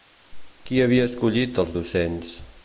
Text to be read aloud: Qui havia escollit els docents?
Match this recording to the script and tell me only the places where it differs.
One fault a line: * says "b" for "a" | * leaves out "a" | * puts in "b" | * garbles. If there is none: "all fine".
all fine